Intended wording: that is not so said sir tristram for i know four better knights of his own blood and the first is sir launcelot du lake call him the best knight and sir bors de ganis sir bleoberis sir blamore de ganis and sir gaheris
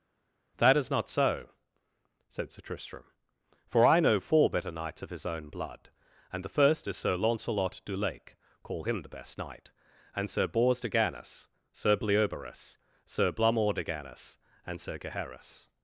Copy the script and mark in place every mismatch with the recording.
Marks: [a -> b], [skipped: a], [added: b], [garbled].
that is not so said sir tristram for i know four better knights of his own blood and the first is sir launcelot du lake call him the best knight and sir bors de ganis sir bleoberis sir blamore de ganis and sir gaheris